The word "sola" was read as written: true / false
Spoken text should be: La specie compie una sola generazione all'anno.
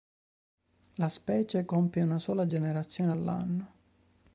true